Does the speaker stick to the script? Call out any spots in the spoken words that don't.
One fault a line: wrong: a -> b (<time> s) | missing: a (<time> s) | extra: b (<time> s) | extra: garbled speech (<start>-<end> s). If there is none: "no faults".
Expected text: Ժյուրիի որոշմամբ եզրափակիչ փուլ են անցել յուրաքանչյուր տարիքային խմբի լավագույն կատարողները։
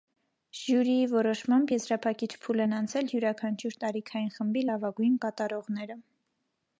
no faults